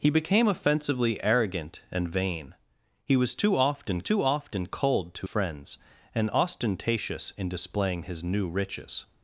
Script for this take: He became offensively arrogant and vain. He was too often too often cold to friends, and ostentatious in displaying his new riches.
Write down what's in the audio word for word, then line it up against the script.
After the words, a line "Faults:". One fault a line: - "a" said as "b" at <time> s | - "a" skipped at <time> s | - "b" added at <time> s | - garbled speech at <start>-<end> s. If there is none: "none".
He became offensively arrogant and vain. He was too often too often cold to friends, and ostentatious in displaying his new riches.
Faults:
none